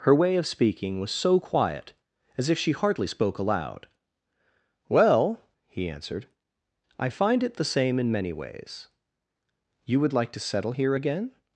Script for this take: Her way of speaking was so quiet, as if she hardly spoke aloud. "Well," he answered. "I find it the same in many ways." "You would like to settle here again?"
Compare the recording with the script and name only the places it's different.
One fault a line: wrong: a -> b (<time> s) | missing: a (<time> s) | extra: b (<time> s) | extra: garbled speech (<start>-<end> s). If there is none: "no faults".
no faults